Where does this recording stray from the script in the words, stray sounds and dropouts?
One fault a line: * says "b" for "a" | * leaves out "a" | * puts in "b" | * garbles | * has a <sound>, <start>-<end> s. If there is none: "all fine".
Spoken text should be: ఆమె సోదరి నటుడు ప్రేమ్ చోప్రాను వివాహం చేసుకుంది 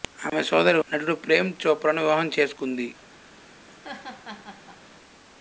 * has a laugh, 3.7-4.8 s